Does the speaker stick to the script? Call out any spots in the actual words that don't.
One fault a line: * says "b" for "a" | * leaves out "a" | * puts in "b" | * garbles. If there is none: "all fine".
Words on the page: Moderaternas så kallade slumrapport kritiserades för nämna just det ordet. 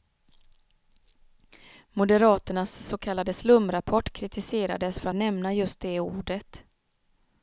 all fine